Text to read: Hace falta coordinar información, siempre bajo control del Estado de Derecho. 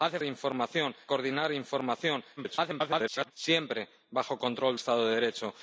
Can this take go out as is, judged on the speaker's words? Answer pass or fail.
fail